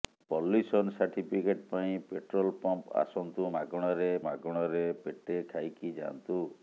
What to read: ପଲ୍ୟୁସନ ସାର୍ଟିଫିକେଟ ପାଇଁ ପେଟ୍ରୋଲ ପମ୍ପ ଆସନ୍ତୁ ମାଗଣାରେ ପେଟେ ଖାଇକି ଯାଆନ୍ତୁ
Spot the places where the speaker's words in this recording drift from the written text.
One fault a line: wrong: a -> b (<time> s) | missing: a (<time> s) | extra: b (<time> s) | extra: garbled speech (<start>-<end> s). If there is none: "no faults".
extra: ମାଗଣାରେ (4.3 s)